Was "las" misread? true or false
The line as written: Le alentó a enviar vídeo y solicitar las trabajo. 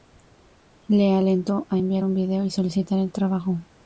true